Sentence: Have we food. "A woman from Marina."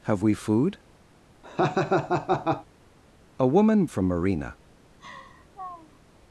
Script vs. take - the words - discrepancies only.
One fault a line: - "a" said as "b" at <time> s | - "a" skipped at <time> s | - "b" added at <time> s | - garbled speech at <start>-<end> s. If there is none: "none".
none